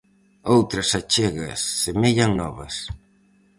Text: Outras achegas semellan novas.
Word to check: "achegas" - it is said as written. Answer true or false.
true